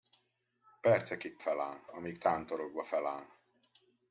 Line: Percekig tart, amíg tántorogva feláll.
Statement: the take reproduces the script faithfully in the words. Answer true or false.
false